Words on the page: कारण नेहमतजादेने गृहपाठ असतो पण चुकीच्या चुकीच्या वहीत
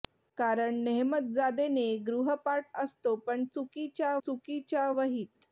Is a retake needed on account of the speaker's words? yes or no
no